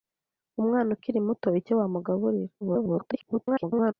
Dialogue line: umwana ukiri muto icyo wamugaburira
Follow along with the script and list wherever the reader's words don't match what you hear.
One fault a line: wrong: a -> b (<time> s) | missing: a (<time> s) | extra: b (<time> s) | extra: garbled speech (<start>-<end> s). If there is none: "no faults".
extra: garbled speech (2.6-3.9 s)